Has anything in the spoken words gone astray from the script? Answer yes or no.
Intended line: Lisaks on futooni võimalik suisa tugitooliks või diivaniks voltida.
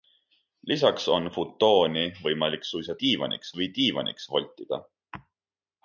yes